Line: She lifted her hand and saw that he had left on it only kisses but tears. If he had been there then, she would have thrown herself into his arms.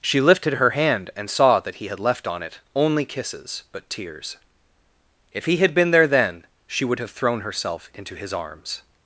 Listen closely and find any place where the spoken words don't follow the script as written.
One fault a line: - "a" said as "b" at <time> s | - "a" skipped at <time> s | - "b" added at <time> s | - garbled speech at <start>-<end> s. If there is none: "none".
none